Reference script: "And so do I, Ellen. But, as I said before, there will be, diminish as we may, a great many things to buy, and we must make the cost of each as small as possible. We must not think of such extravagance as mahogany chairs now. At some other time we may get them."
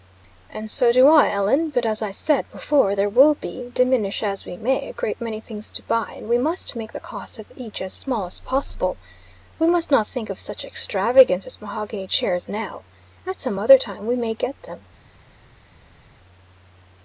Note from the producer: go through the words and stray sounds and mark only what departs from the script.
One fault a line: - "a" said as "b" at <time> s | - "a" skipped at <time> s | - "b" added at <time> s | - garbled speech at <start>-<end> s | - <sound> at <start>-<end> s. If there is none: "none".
none